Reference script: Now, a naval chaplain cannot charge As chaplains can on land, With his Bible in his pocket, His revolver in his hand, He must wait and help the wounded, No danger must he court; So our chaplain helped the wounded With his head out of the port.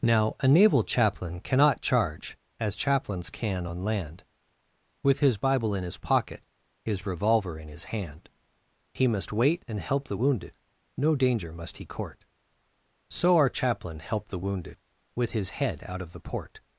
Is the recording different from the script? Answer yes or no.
no